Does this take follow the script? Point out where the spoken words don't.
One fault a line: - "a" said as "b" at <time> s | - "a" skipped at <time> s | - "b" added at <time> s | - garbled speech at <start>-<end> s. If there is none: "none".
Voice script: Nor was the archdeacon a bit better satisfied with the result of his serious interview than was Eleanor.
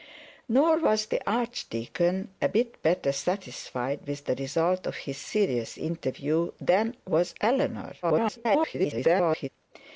- garbled speech at 8.0-9.5 s